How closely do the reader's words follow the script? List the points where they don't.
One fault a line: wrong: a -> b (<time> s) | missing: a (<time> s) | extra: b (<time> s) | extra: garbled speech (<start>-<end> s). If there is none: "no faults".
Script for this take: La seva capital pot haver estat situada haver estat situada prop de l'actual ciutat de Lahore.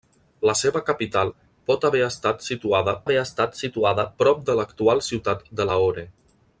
no faults